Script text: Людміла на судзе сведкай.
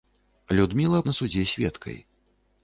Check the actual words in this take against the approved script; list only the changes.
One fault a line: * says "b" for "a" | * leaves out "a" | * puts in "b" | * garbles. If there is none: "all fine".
all fine